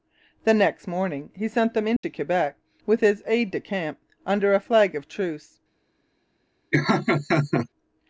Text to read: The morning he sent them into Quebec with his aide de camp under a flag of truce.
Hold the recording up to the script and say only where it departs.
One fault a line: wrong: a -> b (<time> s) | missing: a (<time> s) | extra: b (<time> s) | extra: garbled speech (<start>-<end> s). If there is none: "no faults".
extra: next (0.6 s)